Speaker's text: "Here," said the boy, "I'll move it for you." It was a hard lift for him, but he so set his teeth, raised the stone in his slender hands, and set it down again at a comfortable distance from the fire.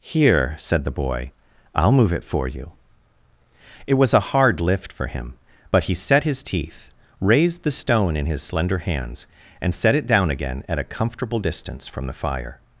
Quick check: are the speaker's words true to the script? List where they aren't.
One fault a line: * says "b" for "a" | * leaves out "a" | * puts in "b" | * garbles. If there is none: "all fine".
* leaves out "so"